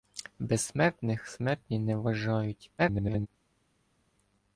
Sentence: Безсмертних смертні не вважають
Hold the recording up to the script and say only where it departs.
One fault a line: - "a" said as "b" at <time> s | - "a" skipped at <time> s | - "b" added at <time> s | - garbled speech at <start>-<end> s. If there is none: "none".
- garbled speech at 2.8-3.3 s